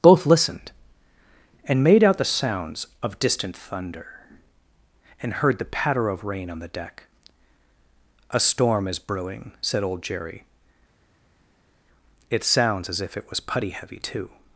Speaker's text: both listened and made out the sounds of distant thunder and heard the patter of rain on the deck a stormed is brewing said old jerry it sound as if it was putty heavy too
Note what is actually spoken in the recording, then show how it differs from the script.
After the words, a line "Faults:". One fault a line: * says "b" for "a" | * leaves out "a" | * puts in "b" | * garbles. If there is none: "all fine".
both listened and made out the sounds of distant thunder and heard the patter of rain on the deck a storm is brewing said old jerry it sounds as if it was putty heavy too
Faults:
* says "storm" for "stormed"
* says "sounds" for "sound"